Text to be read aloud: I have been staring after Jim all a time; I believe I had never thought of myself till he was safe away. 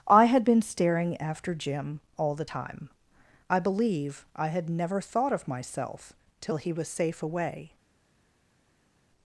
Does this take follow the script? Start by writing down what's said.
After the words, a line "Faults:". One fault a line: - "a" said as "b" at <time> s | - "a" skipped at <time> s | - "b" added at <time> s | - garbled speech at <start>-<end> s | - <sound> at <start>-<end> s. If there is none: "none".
I had been staring after Jim all the time; I believe I had never thought of myself till he was safe away.
Faults:
- "have" said as "had" at 0.2 s
- "a" said as "the" at 2.3 s